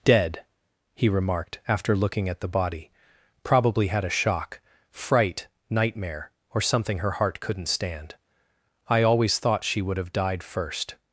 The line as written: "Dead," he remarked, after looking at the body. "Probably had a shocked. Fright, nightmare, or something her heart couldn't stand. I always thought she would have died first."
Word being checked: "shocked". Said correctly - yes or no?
no